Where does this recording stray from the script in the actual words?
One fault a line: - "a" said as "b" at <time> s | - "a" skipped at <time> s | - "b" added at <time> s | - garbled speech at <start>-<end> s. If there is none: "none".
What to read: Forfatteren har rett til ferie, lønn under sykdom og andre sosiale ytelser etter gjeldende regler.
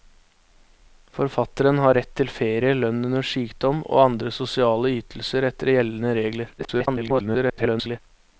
- garbled speech at 6.6-8.0 s